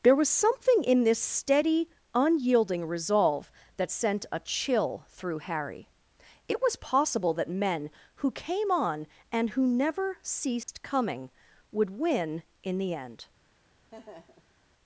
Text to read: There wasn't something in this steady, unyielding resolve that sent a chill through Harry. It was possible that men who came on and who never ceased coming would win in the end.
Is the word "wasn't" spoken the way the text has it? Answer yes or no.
no